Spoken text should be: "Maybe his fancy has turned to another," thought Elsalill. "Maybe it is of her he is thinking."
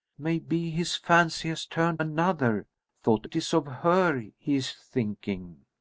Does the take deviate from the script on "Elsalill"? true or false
true